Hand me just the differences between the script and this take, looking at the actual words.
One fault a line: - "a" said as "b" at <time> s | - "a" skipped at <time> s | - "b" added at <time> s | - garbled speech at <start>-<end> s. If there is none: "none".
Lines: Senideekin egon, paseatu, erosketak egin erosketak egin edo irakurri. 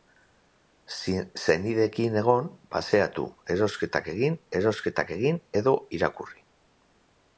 none